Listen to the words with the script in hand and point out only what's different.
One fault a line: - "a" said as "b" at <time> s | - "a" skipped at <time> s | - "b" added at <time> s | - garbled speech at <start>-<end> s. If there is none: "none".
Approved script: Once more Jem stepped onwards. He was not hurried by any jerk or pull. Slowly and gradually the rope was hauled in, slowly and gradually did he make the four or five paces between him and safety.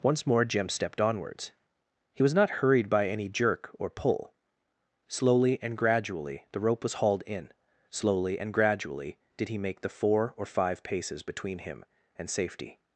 none